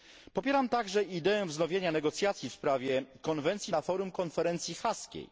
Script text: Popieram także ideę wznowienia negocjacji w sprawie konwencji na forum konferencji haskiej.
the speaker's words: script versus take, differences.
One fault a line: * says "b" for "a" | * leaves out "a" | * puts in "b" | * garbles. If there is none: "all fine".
all fine